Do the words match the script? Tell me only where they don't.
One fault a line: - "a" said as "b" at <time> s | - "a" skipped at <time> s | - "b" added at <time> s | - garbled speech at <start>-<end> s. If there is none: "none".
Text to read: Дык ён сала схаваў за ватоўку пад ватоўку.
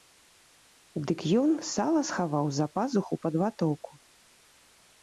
- "ватоўку" said as "пазуху" at 2.8 s